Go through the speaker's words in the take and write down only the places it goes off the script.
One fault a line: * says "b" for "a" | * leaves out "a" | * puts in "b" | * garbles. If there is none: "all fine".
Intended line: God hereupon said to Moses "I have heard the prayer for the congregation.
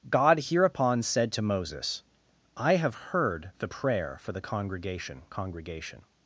* puts in "congregation"